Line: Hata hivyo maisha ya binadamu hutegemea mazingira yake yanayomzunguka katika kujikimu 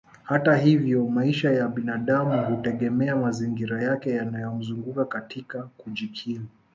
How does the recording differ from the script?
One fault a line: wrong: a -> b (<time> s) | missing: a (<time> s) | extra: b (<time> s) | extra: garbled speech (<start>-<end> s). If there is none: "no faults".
no faults